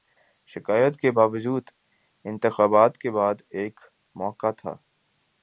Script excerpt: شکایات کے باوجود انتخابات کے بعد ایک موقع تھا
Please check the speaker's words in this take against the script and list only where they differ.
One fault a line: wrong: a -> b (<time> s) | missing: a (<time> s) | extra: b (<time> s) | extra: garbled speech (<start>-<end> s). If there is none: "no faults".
no faults